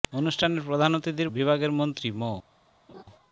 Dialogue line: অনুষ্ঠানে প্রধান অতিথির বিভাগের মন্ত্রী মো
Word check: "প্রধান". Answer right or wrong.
right